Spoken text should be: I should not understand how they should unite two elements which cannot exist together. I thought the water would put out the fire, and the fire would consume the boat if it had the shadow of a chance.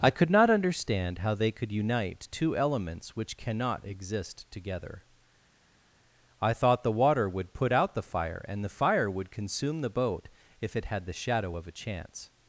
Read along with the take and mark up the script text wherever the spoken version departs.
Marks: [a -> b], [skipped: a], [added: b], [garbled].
I [should -> could] not understand how they [should -> could] unite two elements which cannot exist together. I thought the water would put out the fire, and the fire would consume the boat if it had the shadow of a chance.